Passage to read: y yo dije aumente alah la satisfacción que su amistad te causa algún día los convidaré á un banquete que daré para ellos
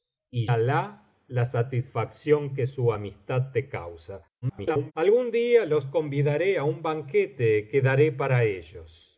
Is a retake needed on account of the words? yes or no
yes